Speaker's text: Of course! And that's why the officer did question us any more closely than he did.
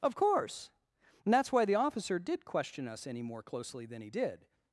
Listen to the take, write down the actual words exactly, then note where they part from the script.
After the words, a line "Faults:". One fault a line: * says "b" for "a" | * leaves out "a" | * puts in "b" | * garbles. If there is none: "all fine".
Of course! And that's why the officer did question us any more closely than he did.
Faults:
all fine